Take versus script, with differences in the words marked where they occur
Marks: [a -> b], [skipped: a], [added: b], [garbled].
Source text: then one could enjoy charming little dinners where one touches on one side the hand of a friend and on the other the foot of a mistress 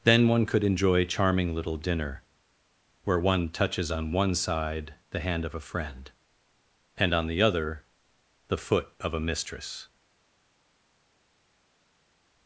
then one could enjoy charming little [dinners -> dinner] where one touches on one side the hand of a friend and on the other the foot of a mistress